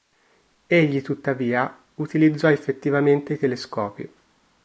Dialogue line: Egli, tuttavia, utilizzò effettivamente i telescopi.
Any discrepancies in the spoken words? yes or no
no